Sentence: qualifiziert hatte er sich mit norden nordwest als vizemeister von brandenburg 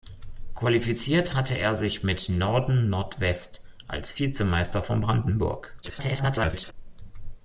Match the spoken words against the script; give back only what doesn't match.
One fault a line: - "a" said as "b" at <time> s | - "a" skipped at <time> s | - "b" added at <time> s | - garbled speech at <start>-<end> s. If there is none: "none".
- garbled speech at 5.8-6.7 s